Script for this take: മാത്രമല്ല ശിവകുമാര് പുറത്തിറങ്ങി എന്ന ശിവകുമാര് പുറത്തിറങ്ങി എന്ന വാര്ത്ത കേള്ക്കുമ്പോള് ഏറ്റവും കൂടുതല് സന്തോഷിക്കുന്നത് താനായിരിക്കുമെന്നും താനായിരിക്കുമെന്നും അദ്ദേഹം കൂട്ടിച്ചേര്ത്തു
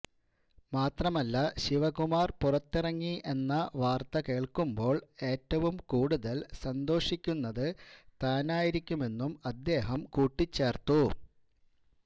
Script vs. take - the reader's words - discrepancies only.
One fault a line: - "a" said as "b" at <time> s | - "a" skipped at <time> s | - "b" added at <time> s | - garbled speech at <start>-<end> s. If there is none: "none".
- "ശിവകുമാര് പുറത്തിറങ്ങി എന്ന" skipped at 3.5 s
- "താനായിരിക്കുമെന്നും" skipped at 9.3 s